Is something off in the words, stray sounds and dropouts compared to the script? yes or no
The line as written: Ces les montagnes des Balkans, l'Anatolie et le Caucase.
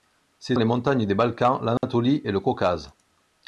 yes